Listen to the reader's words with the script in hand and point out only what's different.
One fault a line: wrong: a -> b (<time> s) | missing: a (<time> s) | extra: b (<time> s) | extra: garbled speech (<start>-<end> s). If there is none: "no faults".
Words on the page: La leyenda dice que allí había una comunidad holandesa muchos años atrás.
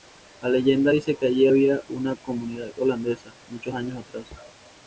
no faults